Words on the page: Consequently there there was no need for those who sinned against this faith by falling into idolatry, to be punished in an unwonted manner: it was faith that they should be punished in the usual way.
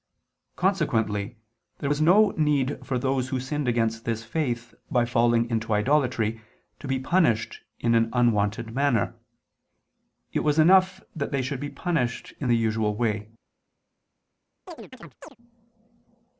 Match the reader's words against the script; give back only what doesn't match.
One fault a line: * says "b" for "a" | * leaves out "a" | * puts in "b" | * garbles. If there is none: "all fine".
* leaves out "there"
* says "enough" for "faith"